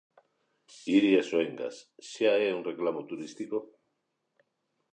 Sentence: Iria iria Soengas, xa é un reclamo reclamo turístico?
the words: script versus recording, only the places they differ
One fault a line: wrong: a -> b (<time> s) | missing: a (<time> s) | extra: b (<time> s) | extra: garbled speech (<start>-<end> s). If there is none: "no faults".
missing: iria (1.2 s)
missing: reclamo (3.0 s)